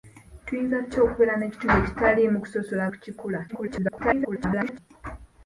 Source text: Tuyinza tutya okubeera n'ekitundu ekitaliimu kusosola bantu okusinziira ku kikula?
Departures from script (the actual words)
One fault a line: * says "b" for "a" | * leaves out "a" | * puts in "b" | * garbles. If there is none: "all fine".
* leaves out "bantu okusinziira"
* garbles